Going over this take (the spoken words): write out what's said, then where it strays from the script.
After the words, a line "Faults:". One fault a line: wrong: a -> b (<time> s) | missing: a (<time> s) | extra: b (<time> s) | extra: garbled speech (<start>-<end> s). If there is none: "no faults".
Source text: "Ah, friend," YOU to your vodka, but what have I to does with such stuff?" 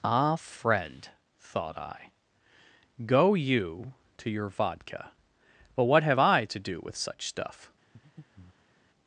"Ah, friend," thought I, "go YOU to your vodka, but what have I to do with such stuff?"
Faults:
extra: thought I go (1.4 s)
wrong: does -> do (6.6 s)